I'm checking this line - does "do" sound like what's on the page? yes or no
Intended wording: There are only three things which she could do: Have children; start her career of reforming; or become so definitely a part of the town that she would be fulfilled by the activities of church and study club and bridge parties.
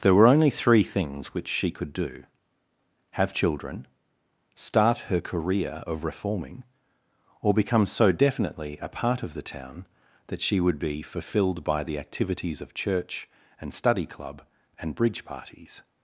yes